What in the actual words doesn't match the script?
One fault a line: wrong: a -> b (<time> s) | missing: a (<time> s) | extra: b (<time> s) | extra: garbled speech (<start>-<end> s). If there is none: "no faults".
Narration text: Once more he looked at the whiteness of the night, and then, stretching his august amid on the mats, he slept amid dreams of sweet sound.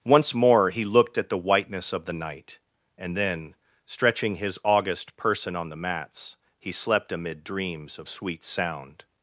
wrong: amid -> person (5.2 s)